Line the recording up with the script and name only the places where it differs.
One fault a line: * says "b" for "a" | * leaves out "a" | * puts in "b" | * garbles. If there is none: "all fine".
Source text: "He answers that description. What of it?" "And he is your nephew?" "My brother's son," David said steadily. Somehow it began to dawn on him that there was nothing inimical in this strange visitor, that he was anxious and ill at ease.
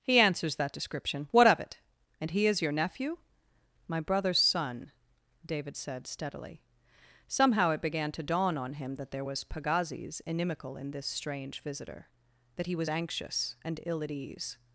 * says "pagazis" for "nothing"